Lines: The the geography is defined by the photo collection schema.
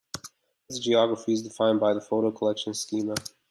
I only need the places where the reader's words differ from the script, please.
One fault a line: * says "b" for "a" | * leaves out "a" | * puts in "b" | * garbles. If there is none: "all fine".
all fine